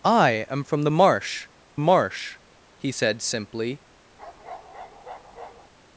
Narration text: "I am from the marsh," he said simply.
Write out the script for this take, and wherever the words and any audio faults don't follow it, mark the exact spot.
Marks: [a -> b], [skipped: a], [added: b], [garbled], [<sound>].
"I am from the marsh," [added: marsh] he said simply. [bark]